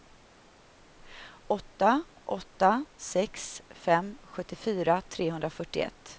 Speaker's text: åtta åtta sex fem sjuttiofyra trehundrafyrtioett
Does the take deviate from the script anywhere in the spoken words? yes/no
no